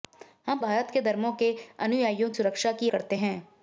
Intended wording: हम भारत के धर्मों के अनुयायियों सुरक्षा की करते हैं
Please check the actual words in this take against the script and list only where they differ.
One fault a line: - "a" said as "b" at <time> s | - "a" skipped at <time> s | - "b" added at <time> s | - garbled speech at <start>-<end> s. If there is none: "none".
none